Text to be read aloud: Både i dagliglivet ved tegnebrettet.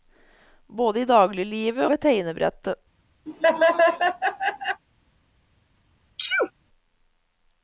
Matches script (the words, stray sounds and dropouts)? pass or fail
fail